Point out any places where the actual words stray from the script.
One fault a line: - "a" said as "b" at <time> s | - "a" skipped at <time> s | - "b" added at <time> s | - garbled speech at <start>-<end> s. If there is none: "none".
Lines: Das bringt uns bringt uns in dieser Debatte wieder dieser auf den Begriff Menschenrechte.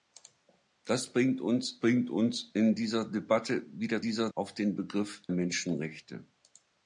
none